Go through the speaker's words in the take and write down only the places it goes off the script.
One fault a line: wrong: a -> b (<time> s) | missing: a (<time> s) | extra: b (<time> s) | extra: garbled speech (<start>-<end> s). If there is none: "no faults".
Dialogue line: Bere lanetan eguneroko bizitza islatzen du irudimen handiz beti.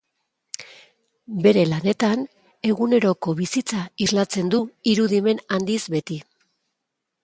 no faults